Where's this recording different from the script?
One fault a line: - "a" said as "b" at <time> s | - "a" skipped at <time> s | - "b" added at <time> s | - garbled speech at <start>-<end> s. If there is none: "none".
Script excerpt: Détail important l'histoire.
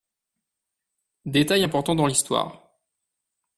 - "dans" added at 1.9 s